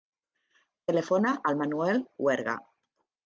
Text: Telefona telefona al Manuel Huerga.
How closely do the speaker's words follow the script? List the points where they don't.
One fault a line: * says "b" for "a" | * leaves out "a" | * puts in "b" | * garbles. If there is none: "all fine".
* leaves out "telefona"